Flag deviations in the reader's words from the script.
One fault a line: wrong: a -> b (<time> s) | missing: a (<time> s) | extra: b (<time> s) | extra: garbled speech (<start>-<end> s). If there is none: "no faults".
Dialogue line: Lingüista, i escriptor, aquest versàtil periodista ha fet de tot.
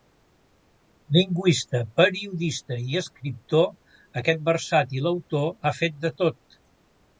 extra: periodista (2.0 s)
wrong: periodista -> autor (5.2 s)